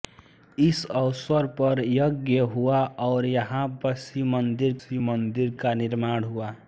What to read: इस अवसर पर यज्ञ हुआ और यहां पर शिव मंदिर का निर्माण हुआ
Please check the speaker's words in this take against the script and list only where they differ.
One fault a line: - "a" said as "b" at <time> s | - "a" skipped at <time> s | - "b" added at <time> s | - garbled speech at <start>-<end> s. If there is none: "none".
- "शिव मंदिर" added at 4.8 s